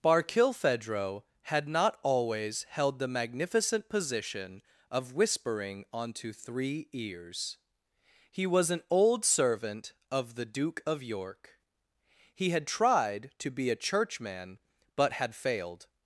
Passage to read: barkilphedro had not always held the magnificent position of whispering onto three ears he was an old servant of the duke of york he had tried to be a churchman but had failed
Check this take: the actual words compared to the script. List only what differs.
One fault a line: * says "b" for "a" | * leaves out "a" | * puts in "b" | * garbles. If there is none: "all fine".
all fine